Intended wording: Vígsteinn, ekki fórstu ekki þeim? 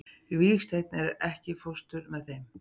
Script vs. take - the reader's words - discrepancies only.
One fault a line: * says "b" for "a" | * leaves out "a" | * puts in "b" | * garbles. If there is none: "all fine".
* says "með" for "ekki"